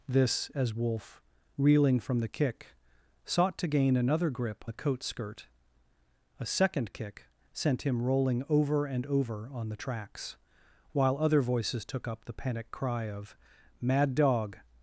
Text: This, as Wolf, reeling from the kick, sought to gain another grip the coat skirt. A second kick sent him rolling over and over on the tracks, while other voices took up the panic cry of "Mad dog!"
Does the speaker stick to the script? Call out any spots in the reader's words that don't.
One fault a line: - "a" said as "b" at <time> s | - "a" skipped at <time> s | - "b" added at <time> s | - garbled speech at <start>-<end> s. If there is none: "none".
none